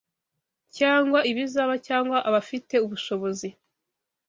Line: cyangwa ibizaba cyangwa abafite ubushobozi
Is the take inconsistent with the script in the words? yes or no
no